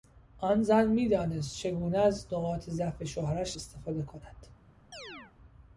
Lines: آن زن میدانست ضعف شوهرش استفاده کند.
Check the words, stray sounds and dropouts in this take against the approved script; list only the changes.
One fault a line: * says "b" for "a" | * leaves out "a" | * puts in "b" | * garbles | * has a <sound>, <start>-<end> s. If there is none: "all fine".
* puts in "چگونه از نقاط"
* has a chirp, 4.9-5.3 s